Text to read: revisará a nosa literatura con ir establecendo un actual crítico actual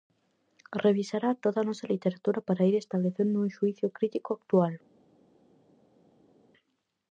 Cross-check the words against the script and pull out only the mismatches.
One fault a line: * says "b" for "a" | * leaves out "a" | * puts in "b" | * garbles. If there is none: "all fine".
* puts in "toda"
* says "para" for "con"
* says "xuízo" for "actual"